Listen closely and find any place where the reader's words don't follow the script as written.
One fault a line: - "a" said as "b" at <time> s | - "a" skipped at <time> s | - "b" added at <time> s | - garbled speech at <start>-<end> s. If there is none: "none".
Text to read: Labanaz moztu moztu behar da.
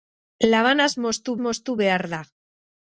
none